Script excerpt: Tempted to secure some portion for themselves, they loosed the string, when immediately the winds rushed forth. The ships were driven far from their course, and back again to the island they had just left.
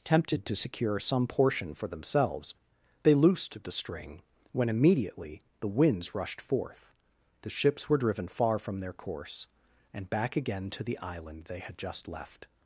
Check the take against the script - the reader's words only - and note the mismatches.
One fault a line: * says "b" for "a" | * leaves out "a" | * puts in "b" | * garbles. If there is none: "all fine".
all fine